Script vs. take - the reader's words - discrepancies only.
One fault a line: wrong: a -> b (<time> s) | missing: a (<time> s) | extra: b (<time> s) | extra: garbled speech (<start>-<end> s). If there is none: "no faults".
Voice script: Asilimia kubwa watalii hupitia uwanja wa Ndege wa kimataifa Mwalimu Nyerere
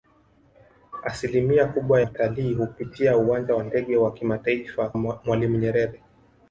no faults